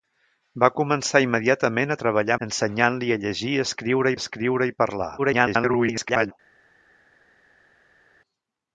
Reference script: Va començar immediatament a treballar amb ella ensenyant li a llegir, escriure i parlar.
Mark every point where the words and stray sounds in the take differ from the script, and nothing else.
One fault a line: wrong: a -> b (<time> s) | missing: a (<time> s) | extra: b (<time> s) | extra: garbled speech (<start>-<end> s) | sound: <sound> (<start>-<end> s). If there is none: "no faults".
missing: amb ella (2.4 s)
extra: escriure (4.2 s)
extra: garbled speech (5.2-6.3 s)